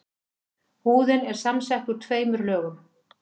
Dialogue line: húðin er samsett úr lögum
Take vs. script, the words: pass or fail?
fail